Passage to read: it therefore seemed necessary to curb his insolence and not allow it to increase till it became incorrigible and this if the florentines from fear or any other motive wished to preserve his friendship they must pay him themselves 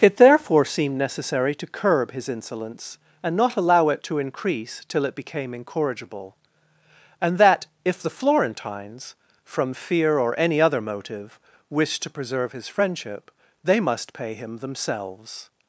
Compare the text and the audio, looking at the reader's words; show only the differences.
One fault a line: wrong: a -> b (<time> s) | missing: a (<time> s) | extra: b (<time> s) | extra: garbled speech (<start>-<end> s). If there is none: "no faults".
wrong: this -> that (7.4 s)